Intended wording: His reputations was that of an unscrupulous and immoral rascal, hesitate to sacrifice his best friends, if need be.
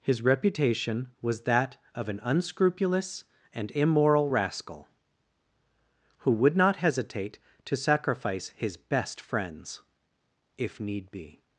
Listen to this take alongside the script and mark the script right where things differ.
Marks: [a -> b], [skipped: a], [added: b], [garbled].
His [reputations -> reputation] was that of an unscrupulous and immoral rascal, [added: who would not] hesitate to sacrifice his best friends, if need be.